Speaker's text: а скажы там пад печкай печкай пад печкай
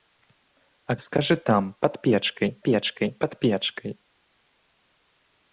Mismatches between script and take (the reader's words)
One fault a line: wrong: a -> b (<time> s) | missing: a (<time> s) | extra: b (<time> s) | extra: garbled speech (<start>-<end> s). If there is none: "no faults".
no faults